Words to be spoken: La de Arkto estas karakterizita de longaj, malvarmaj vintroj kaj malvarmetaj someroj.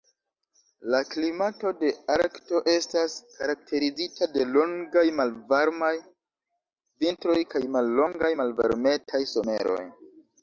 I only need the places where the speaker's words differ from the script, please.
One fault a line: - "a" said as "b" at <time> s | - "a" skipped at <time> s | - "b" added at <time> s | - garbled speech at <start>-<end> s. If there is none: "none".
- "klimato" added at 1.1 s
- "mallongaj" added at 7.8 s